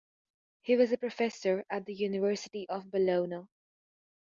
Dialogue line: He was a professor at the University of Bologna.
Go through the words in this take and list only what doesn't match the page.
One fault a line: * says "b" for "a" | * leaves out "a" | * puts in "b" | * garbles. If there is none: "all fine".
all fine